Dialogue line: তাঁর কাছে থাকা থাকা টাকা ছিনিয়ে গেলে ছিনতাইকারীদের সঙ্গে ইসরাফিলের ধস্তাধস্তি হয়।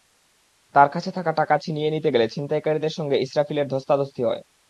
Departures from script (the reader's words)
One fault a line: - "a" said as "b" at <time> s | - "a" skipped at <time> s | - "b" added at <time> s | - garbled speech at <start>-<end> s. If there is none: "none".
- "থাকা" skipped at 1.3 s
- "নিতে" added at 1.9 s